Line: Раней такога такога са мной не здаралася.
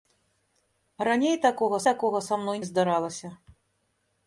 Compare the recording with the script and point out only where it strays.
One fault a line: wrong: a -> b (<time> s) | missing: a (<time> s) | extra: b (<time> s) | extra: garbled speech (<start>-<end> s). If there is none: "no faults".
no faults